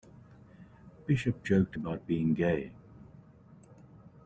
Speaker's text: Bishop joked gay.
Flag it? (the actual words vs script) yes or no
yes